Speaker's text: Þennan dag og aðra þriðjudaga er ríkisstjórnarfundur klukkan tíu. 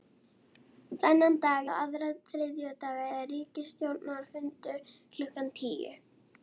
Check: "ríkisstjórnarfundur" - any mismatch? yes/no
no